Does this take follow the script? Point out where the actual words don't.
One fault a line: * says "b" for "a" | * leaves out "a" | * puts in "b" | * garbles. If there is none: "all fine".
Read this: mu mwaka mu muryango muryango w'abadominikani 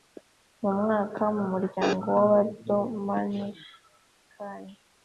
* leaves out "muryango"